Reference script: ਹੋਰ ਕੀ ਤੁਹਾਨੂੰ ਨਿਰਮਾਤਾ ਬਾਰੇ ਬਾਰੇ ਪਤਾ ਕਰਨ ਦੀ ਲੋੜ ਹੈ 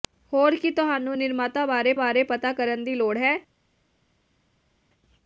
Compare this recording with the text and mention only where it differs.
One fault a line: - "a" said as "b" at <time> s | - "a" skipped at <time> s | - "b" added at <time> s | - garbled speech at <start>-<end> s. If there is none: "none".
none